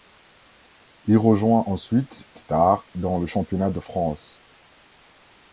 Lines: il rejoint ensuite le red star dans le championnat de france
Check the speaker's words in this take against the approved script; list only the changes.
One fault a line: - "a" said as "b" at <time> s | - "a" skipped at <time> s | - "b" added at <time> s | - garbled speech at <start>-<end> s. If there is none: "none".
- "le red" skipped at 2.3 s